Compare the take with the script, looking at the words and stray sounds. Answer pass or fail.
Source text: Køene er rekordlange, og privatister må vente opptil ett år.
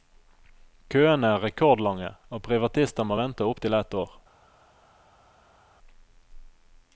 pass